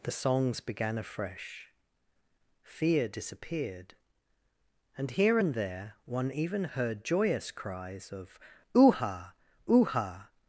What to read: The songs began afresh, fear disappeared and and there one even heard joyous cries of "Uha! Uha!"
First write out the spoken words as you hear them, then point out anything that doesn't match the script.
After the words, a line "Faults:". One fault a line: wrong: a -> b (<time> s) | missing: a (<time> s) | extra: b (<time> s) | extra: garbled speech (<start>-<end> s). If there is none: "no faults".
The songs began afresh, fear disappeared and here and there one even heard joyous cries of "Uha! Uha!"
Faults:
extra: here (5.1 s)